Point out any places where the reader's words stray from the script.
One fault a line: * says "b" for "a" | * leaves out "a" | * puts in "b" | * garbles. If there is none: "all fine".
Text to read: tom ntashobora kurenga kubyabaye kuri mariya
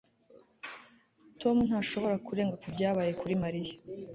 all fine